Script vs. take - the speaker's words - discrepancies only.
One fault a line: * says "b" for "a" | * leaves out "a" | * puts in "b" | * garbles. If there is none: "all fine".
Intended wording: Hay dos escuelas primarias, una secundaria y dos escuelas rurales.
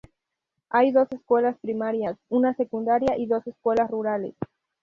all fine